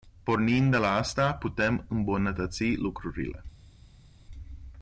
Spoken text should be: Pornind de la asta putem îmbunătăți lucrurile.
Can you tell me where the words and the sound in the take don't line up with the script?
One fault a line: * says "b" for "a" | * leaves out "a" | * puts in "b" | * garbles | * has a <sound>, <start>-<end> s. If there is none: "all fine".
all fine